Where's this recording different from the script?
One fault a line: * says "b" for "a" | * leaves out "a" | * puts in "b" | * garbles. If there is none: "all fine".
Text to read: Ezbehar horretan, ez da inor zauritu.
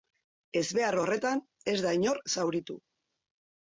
all fine